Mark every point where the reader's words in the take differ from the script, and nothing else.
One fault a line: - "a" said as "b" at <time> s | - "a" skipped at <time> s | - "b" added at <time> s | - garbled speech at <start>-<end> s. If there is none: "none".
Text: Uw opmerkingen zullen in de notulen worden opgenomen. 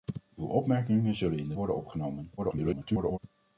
- "notulen" skipped at 1.6 s
- garbled speech at 2.4-3.2 s